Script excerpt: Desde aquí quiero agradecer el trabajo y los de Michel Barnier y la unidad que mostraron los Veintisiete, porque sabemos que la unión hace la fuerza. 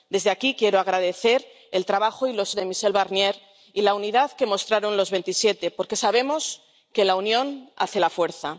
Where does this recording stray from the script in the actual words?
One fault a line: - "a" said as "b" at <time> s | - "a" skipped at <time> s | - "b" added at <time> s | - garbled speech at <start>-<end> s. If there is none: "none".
none